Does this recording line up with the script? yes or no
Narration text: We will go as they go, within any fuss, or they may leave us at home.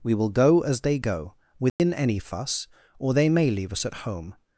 yes